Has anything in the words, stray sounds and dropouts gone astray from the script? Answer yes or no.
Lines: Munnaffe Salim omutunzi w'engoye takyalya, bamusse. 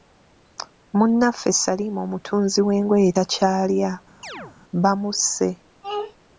yes